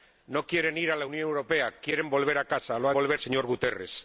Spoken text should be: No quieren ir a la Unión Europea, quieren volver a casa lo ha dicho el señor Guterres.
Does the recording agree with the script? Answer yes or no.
no